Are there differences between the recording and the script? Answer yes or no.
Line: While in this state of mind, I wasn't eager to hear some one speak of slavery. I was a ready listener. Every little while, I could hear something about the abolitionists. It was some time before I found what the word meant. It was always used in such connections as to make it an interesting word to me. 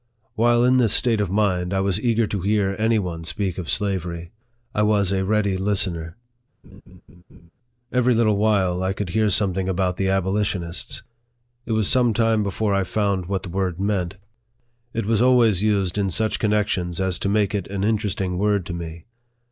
yes